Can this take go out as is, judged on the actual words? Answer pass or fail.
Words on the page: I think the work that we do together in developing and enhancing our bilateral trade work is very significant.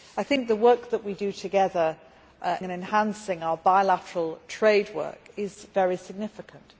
fail